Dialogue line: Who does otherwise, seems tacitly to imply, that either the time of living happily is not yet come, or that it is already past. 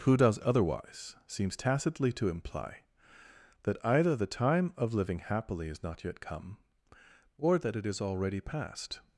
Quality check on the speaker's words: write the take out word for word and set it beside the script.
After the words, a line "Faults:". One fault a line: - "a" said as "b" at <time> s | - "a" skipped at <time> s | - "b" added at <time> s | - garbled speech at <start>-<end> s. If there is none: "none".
Who does otherwise, seems tacitly to imply, that either the time of living happily is not yet come, or that it is already past.
Faults:
none